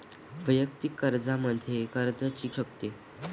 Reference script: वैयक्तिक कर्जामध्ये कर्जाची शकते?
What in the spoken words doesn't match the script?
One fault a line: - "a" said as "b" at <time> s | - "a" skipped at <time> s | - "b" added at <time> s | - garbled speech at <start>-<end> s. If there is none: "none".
none